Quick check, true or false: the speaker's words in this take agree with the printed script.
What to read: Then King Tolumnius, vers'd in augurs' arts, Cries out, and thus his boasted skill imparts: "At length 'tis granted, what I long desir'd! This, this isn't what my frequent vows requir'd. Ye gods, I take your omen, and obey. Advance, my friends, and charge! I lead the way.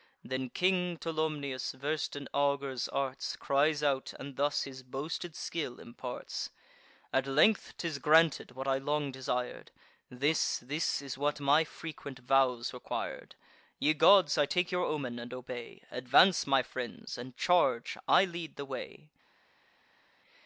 false